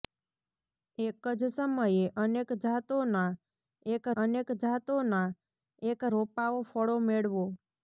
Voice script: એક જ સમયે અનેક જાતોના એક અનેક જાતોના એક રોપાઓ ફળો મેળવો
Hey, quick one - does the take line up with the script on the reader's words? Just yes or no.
yes